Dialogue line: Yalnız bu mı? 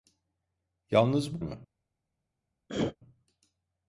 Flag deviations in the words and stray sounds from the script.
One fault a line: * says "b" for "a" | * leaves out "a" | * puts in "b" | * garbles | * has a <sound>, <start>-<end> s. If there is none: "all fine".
* has a throat clearing, 2.7-3.0 s